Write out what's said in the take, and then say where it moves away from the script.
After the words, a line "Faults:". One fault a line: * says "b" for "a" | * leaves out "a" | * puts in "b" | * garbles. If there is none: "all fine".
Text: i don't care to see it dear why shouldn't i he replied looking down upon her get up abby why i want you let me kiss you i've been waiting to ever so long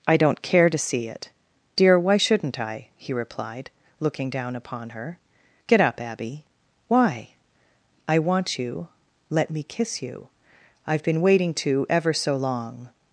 i don't care to see it dear why shouldn't i he replied looking down upon her get up abby why i want you let me kiss you i've been waiting to ever so long
Faults:
all fine